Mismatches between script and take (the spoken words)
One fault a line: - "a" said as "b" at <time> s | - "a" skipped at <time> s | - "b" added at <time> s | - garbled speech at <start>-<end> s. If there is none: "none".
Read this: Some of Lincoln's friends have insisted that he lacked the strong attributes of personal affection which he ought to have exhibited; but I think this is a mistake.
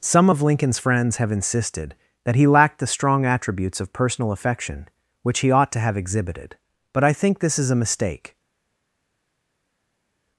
none